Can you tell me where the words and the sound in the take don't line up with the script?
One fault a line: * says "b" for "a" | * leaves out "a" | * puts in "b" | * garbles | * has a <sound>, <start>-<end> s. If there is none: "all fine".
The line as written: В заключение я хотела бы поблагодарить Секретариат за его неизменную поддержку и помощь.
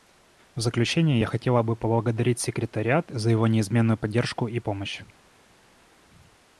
all fine